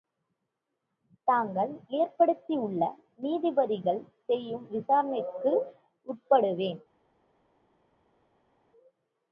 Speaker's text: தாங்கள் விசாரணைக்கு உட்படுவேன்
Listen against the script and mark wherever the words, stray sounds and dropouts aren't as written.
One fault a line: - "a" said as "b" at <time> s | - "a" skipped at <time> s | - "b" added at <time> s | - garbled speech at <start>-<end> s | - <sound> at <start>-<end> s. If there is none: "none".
- "ஏற்படுத்தியுள்ள நீதிபதிகள் செய்யும்" added at 1.9 s